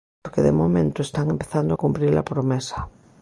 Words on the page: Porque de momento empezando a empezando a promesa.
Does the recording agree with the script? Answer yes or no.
no